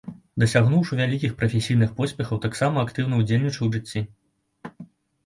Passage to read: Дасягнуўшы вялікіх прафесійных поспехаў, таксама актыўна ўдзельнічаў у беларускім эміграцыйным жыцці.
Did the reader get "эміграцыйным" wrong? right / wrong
wrong